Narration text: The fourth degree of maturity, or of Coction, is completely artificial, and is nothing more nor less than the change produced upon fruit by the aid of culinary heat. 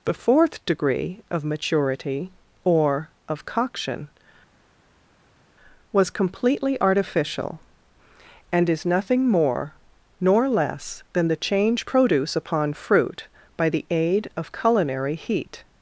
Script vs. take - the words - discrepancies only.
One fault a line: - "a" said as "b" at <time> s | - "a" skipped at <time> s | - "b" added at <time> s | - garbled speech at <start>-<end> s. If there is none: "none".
- "is" said as "was" at 5.9 s
- "produced" said as "produce" at 11.9 s